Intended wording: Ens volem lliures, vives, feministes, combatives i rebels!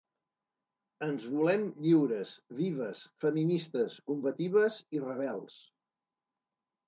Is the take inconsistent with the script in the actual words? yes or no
no